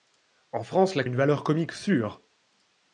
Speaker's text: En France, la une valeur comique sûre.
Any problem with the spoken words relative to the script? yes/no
no